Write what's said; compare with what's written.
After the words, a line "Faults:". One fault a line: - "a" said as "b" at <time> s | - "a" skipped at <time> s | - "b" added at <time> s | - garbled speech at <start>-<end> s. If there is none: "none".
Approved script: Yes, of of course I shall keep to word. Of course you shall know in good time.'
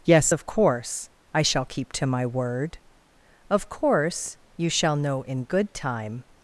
Yes, of course I shall keep to my word. Of course you shall know in good time.'
Faults:
- "of" skipped at 0.5 s
- "my" added at 2.0 s